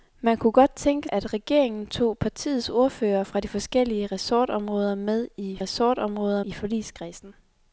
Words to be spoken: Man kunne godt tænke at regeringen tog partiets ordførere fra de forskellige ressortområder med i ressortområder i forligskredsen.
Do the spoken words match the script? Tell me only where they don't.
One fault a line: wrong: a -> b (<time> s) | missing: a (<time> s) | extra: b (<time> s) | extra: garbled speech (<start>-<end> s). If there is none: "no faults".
no faults